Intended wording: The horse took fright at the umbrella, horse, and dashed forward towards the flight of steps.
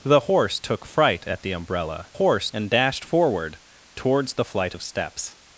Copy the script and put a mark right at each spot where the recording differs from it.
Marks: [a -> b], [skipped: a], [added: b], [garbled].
The horse took fright at the umbrella, horse, and dashed forward towards the flight of steps.